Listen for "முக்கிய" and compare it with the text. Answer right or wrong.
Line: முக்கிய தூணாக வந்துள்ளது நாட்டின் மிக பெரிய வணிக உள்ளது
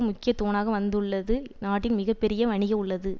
right